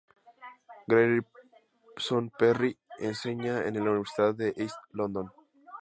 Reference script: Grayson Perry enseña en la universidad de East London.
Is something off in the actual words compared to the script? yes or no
no